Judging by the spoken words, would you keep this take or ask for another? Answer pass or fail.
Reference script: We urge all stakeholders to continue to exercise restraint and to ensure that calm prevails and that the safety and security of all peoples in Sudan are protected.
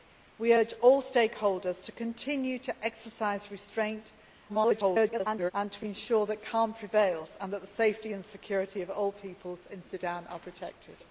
fail